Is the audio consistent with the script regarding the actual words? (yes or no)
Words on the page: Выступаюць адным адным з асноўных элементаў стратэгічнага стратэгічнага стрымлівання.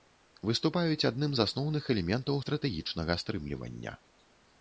no